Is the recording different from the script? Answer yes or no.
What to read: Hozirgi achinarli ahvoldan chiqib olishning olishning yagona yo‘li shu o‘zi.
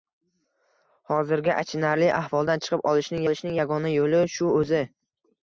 no